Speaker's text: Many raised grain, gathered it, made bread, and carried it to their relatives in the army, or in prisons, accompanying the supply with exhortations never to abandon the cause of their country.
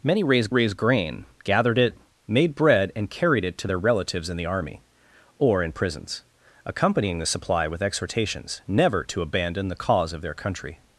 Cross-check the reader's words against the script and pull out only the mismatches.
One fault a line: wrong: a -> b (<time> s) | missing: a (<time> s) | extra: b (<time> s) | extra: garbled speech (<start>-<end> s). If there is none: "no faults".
extra: raised (0.5 s)